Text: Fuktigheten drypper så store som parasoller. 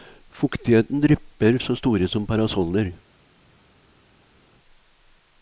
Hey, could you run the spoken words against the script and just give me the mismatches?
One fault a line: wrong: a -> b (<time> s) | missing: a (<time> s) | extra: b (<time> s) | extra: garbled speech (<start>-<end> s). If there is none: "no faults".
no faults